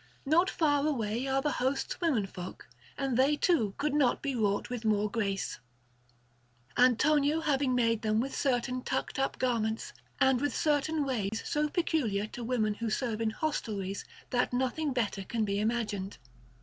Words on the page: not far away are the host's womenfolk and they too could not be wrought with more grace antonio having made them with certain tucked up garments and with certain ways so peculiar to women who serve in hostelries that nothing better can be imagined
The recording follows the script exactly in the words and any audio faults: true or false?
false